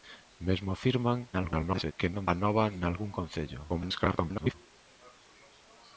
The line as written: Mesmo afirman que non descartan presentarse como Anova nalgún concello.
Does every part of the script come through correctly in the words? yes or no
no